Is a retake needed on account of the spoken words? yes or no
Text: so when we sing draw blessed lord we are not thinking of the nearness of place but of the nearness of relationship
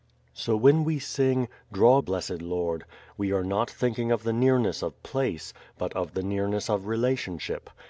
no